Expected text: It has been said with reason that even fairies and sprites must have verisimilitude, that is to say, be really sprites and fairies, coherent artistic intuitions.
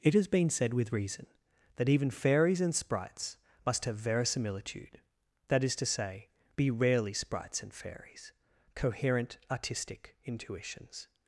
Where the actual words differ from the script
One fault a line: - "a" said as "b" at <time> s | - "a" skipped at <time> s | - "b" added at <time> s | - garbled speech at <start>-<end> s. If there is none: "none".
- "really" said as "rarely" at 6.7 s